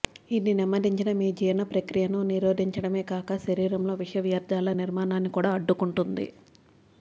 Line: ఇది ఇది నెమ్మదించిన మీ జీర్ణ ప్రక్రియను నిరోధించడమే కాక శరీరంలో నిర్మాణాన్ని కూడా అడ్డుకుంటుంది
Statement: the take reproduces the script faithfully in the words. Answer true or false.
false